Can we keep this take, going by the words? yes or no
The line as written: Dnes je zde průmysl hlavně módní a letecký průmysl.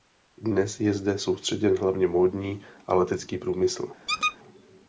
no